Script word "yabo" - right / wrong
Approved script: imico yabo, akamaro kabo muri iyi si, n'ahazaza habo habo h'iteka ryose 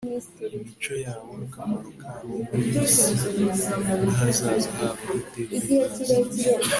right